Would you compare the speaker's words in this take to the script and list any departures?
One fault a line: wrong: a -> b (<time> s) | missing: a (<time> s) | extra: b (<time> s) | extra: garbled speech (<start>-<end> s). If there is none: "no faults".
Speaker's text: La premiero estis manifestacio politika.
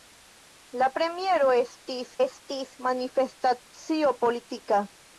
extra: estis (2.2 s)